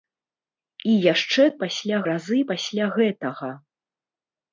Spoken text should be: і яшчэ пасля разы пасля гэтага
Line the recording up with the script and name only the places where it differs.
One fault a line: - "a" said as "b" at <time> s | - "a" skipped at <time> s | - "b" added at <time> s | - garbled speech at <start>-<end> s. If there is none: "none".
none